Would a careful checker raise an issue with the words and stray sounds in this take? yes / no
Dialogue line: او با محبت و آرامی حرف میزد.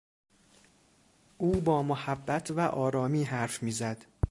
no